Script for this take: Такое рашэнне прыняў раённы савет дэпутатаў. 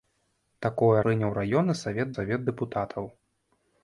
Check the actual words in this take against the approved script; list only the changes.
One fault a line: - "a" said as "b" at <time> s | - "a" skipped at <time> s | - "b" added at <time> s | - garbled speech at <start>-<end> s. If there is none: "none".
- "рашэнне" skipped at 1.0 s
- "савет" added at 2.2 s